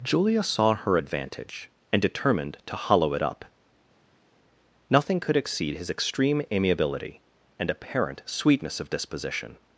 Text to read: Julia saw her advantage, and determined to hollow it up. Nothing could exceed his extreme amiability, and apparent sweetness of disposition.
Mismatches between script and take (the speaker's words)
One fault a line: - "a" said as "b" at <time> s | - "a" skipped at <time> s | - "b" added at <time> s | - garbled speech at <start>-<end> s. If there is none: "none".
none